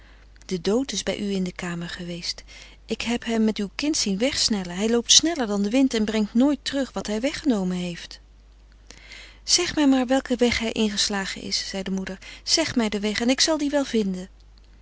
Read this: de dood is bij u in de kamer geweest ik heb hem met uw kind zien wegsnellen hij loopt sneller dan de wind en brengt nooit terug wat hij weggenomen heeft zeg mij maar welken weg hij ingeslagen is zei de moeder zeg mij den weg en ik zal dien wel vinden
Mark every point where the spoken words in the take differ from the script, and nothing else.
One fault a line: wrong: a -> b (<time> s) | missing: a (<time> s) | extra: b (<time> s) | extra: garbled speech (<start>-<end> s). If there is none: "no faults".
no faults